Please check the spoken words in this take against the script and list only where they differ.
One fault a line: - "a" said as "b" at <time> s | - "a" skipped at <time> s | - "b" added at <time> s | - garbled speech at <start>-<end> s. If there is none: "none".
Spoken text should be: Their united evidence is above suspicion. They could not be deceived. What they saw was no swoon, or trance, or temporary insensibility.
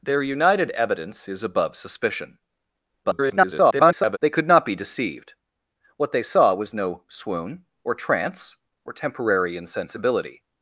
- garbled speech at 3.0-4.2 s